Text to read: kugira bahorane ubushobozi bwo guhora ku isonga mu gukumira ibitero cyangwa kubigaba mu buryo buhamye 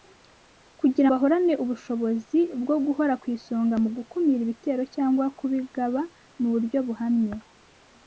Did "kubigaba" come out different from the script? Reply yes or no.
no